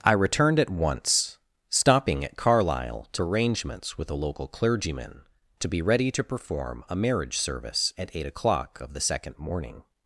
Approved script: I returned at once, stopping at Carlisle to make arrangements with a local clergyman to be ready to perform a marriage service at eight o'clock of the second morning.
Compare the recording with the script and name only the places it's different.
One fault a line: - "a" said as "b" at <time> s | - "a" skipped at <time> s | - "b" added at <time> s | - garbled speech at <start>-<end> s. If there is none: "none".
- "make" skipped at 3.2 s